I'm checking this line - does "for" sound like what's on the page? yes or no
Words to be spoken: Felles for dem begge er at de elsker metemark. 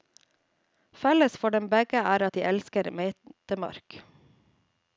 yes